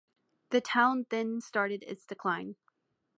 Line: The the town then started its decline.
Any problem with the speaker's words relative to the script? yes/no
yes